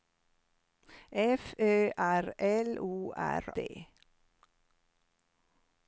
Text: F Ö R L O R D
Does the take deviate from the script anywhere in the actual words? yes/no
no